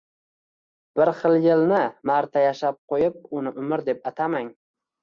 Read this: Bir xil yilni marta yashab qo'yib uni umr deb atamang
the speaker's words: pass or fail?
pass